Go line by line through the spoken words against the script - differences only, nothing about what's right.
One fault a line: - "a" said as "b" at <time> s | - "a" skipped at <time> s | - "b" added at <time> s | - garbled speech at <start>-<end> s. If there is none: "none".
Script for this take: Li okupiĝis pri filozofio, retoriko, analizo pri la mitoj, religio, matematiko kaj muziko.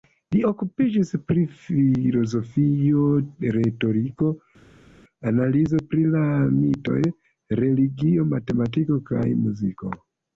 none